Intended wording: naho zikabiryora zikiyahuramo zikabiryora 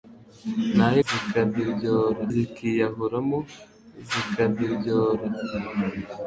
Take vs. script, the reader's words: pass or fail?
pass